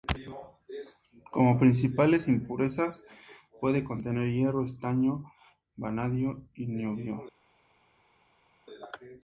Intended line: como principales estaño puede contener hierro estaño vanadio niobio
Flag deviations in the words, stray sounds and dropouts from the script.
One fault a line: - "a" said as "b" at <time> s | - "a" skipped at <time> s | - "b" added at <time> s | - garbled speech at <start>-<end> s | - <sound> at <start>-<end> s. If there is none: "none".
- "estaño" said as "impurezas" at 2.3 s
- "y" added at 6.5 s